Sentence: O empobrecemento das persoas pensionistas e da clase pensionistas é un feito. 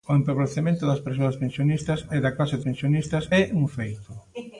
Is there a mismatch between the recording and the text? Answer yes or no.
no